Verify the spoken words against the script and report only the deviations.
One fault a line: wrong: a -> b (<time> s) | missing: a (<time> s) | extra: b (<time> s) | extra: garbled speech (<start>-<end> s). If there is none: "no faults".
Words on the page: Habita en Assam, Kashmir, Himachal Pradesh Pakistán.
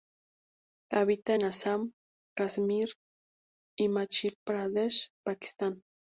no faults